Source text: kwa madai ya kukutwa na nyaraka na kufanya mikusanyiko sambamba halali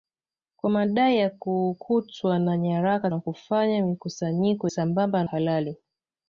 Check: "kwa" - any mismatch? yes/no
no